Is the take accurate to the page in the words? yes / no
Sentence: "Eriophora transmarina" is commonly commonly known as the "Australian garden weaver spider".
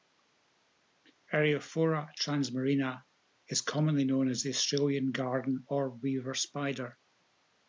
no